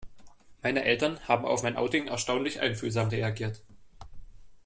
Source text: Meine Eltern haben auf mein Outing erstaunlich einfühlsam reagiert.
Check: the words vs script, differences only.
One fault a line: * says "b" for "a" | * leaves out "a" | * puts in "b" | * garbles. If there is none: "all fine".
all fine